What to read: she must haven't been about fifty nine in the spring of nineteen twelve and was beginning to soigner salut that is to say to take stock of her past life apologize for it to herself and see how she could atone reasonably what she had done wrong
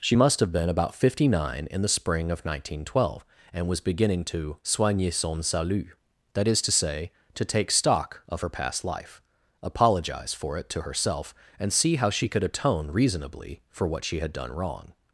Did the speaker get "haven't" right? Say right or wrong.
wrong